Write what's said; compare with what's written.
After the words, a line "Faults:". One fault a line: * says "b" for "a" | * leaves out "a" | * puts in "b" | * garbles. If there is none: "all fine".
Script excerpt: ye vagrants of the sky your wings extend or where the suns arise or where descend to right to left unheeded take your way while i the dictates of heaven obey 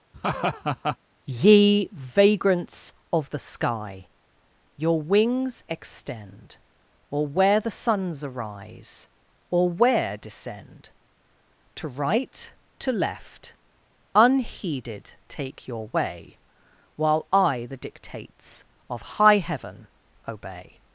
ye vagrants of the sky your wings extend or where the suns arise or where descend to right to left unheeded take your way while i the dictates of high heaven obey
Faults:
* puts in "high"